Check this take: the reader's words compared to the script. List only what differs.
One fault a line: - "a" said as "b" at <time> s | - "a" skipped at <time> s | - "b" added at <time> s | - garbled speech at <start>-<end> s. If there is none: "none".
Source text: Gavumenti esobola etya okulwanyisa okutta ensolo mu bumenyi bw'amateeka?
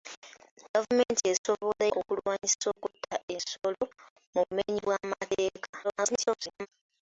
- "etya" skipped at 1.8 s
- garbled speech at 5.8-6.7 s